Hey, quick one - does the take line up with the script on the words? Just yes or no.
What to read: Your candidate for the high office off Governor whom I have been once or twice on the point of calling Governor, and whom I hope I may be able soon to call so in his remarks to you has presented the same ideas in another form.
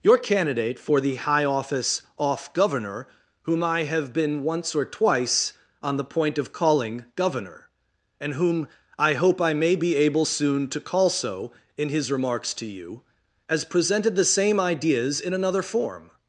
yes